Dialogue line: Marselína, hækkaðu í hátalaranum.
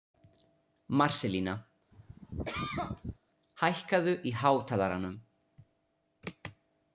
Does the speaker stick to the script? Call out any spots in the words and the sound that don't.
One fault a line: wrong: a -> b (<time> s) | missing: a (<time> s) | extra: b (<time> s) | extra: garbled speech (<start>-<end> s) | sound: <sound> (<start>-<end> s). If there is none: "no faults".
sound: cough (1.9-3.2 s)